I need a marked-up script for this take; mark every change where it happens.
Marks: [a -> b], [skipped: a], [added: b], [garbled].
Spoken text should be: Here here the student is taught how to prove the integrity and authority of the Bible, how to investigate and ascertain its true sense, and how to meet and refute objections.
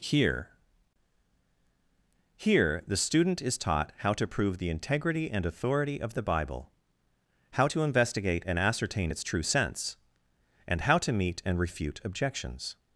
Here here the student is taught how to prove the integrity and authority of the Bible, how to investigate and ascertain its true sense, and how to meet and refute objections.